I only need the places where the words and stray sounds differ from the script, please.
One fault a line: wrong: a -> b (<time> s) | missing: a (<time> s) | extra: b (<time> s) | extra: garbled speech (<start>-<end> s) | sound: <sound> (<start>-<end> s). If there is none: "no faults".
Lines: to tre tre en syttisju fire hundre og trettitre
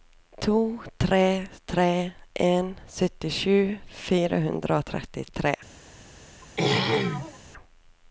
sound: throat clearing (6.4-7.4 s)